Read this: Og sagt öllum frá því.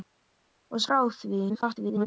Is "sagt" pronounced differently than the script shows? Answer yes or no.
yes